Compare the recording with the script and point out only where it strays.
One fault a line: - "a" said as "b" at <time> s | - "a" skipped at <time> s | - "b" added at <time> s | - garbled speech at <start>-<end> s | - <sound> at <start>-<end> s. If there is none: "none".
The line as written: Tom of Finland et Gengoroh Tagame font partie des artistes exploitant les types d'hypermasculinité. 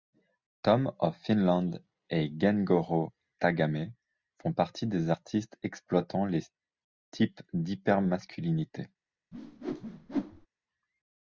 - whoosh at 9.3-10.5 s